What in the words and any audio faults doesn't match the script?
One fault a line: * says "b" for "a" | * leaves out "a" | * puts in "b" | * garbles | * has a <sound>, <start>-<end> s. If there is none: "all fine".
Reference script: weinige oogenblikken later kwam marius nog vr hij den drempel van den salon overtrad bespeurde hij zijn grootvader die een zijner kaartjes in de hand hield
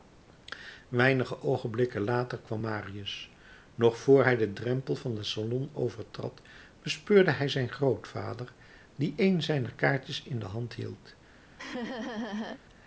* has a laugh, 11.6-12.6 s